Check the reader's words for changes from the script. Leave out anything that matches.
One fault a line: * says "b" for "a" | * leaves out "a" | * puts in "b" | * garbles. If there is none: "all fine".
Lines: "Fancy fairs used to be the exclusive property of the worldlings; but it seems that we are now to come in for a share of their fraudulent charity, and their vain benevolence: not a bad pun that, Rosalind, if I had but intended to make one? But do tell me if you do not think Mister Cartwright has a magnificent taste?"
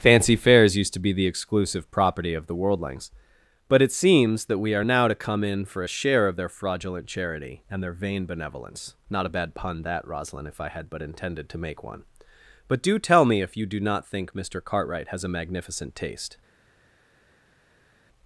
all fine